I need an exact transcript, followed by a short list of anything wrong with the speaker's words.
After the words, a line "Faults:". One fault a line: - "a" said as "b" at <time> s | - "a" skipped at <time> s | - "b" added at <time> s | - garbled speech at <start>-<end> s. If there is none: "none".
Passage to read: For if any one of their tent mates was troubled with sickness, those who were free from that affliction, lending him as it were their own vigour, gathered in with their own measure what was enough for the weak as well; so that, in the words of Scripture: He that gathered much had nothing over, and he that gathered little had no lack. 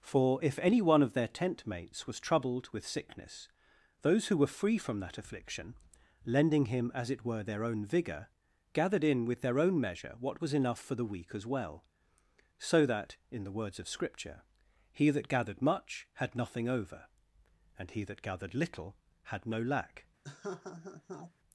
For if any one of their tent mates was troubled with sickness, those who were free from that affliction, lending him as it were their own vigour, gathered in with their own measure what was enough for the weak as well; so that, in the words of Scripture: He that gathered much had nothing over, and he that gathered little had no lack.
Faults:
none